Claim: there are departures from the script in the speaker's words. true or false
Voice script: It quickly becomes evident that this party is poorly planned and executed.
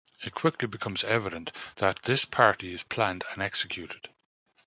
true